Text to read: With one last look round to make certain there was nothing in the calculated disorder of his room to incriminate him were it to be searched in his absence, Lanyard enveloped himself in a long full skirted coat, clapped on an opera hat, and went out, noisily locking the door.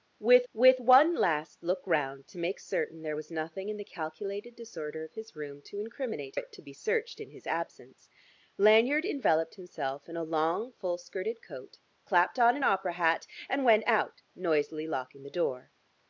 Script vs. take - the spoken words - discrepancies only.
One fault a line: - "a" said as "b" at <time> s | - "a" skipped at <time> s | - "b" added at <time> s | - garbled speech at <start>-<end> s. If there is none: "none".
- "with" added at 0.5 s
- "him were" skipped at 6.4 s